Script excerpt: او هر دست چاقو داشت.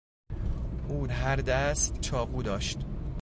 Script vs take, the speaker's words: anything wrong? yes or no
no